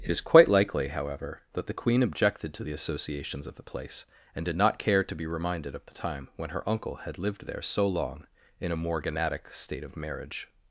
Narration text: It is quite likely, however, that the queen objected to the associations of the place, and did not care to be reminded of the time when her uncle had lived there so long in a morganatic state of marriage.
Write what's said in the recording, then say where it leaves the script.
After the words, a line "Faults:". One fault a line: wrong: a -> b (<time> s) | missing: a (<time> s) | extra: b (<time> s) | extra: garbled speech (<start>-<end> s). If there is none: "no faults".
It is quite likely, however, that the queen objected to the associations of the place, and did not care to be reminded of the time when her uncle had lived there so long in a morganatic state of marriage.
Faults:
no faults